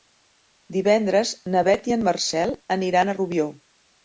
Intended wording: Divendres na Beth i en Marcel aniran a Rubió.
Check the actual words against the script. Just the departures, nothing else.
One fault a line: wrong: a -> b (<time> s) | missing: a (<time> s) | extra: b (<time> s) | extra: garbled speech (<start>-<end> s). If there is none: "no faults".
no faults